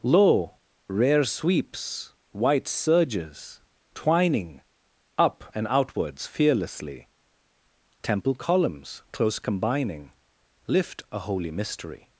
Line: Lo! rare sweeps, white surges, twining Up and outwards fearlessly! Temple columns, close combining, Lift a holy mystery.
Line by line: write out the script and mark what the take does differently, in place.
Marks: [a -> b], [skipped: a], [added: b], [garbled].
Lo! rare sweeps, white surges, twining Up and outwards fearlessly! Temple columns, close combining, Lift a holy mystery.